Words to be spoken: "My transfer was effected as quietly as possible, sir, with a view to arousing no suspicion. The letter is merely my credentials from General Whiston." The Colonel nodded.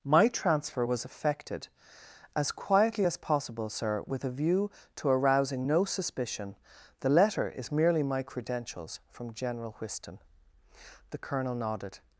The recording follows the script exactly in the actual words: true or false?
true